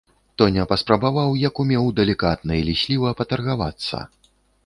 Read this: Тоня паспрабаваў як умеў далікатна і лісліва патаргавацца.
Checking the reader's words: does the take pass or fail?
pass